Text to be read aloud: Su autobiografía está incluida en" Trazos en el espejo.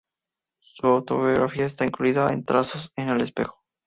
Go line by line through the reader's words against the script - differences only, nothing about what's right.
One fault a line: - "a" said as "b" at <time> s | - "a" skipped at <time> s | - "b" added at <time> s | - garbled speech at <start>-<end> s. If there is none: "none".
none